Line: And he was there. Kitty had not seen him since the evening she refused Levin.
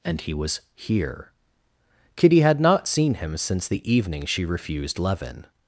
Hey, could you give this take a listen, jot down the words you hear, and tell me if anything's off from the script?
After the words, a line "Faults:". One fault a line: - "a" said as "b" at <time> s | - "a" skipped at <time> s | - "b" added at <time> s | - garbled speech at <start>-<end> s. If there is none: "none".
And he was here. Kitty had not seen him since the evening she refused Levin.
Faults:
- "there" said as "here" at 0.7 s